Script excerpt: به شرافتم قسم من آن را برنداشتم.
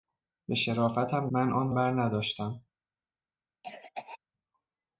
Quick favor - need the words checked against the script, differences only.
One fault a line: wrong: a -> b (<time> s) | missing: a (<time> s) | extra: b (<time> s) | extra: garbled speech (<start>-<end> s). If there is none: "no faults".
missing: قسم (1.3 s)
missing: را (1.7 s)